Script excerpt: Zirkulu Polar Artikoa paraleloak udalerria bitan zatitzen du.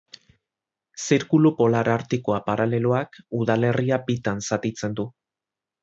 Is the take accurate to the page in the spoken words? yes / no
yes